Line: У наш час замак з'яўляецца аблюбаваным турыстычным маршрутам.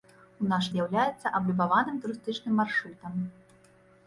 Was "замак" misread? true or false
true